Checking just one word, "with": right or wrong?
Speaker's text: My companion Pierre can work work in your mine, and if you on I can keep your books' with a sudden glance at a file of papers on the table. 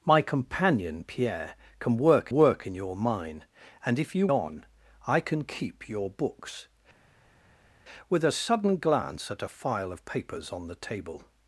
right